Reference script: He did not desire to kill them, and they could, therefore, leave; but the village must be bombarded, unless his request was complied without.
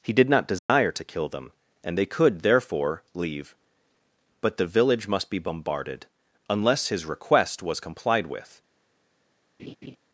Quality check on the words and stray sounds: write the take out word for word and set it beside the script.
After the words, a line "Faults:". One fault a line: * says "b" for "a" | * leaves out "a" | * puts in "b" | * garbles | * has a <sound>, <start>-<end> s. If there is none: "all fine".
He did not desire to kill them, and they could, therefore, leave; but the village must be bombarded, unless his request was complied with.
Faults:
* has a dropout, 0.6-0.7 s
* says "with" for "without"
* has a laugh, 9.6-10.0 s